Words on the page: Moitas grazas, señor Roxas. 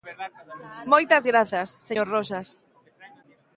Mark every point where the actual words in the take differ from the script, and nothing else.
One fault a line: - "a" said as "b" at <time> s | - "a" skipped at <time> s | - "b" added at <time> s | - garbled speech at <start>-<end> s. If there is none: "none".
none